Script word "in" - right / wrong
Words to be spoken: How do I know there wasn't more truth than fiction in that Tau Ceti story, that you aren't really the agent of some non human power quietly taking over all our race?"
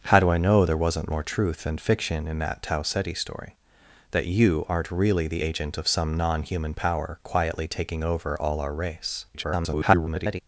right